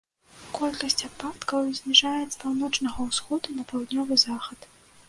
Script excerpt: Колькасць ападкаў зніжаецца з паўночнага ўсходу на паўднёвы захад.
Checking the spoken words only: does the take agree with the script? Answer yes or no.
no